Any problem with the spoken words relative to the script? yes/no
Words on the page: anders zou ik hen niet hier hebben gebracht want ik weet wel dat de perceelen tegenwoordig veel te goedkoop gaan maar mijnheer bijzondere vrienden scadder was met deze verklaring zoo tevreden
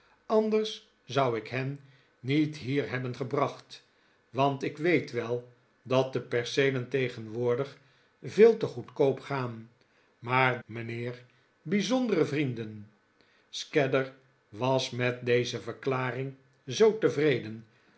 no